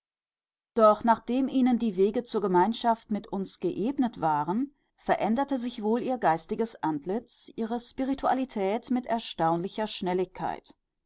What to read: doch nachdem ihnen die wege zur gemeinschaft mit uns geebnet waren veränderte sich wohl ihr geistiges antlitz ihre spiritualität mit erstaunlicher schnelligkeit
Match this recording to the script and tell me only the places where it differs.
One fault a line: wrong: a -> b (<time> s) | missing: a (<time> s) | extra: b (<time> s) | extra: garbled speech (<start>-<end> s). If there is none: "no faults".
no faults